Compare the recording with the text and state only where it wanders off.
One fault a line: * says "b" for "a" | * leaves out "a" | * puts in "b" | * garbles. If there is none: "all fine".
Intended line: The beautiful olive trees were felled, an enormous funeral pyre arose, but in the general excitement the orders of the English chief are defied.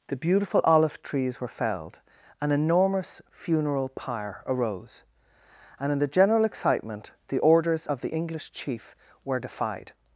* says "and" for "but"
* says "were" for "are"